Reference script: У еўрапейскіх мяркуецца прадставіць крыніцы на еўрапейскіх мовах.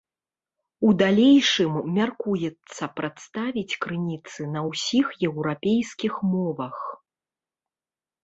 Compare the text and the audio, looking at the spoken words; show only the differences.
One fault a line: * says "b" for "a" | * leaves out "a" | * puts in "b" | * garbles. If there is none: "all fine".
* says "далейшым" for "еўрапейскіх"
* puts in "ўсіх"